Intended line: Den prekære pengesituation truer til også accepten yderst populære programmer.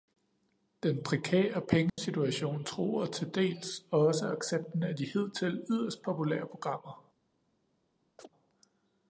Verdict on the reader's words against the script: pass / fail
fail